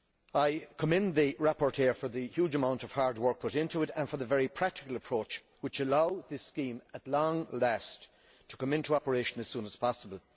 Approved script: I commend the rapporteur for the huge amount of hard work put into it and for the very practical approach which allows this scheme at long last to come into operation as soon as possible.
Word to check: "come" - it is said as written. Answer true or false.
true